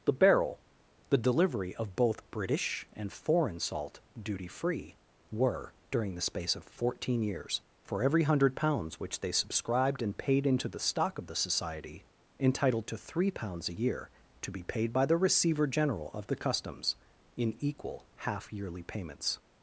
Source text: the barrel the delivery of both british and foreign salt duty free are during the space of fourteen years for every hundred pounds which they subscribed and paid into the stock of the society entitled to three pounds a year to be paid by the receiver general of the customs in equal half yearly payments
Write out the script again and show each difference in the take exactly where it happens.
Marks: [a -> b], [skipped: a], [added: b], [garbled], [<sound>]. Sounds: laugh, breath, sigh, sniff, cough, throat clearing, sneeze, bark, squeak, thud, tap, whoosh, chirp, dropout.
the barrel the delivery of both british and foreign salt duty free [are -> were] during the space of fourteen years for every hundred pounds which they subscribed and paid into the stock of the society entitled to three pounds a year to be paid by the receiver general of the customs in equal half yearly payments